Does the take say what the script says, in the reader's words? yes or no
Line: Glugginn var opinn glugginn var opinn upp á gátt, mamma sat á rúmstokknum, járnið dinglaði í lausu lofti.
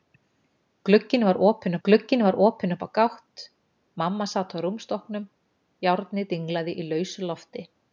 yes